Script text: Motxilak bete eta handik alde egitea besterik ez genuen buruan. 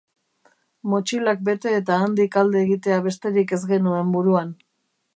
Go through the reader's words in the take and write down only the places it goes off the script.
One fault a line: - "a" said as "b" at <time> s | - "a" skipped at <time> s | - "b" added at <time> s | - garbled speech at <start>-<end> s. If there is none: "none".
none